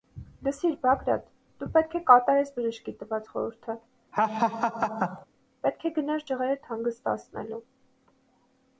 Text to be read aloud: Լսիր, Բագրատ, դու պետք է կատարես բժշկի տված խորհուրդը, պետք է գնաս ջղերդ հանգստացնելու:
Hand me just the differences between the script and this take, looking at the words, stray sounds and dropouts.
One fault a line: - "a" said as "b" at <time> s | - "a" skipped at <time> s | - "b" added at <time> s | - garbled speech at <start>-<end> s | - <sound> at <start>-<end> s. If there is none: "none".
- laugh at 4.1-5.3 s